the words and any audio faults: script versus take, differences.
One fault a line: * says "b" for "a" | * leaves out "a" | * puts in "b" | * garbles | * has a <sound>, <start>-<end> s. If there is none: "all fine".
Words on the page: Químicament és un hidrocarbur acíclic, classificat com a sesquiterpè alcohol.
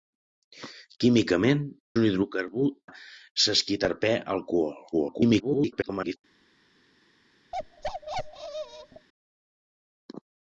* leaves out "és"
* leaves out "acíclic classificat com"
* garbles
* has a bark, 7.5-9.1 s